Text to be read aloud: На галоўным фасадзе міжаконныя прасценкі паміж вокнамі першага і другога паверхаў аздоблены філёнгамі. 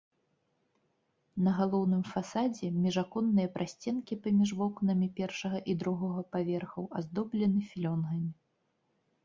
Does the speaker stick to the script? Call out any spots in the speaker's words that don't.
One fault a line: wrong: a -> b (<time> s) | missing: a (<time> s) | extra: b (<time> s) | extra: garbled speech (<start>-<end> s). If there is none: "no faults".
no faults